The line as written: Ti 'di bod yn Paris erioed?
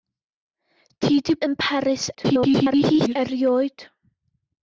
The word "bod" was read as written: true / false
false